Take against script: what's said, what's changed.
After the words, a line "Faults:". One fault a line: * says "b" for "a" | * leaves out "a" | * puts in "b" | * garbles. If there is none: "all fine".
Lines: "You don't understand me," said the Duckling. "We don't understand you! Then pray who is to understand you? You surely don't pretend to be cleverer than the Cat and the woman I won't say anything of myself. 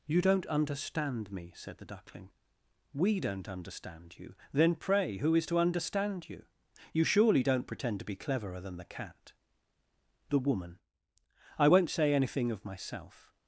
"You don't understand me," said the Duckling. "We don't understand you! Then pray who is to understand you? You surely don't pretend to be cleverer than the Cat the woman I won't say anything of myself.
Faults:
* leaves out "and"